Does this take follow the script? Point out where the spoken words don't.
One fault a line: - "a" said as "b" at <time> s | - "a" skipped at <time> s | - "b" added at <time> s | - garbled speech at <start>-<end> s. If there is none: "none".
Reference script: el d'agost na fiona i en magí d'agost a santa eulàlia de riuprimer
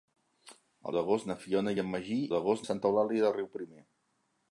none